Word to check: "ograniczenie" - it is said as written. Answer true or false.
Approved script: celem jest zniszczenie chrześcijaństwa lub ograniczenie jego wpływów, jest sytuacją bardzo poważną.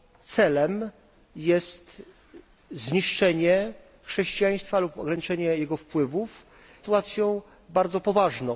true